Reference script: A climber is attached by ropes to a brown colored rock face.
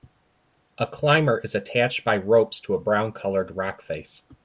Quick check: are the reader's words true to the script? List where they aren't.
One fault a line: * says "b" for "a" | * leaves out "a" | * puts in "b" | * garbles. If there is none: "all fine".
all fine